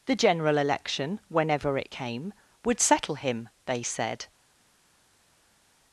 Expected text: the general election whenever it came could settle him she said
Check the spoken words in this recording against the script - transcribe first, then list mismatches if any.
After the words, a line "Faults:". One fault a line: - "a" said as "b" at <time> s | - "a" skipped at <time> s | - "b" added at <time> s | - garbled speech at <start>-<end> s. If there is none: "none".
the general election whenever it came would settle him they said
Faults:
- "could" said as "would" at 2.6 s
- "she" said as "they" at 3.6 s